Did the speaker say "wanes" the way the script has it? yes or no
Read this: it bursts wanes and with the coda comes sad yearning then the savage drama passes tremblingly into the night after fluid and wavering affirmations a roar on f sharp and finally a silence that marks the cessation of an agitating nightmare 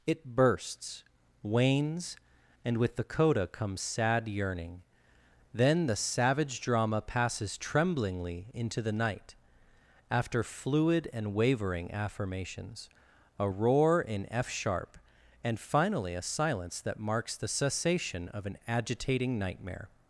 yes